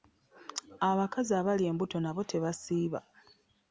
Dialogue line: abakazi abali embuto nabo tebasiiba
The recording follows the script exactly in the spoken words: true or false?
true